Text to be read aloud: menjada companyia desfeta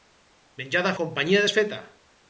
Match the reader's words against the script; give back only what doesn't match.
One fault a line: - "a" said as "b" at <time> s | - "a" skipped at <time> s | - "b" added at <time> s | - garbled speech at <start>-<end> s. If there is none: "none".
none